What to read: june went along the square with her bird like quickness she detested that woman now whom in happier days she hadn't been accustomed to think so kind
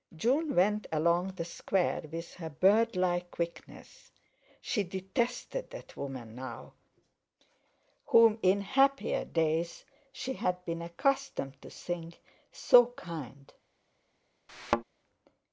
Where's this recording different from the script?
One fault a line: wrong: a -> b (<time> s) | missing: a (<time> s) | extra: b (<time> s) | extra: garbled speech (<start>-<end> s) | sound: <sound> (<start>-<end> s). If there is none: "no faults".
wrong: hadn't -> had (10.3 s)
sound: thud (14.5-14.8 s)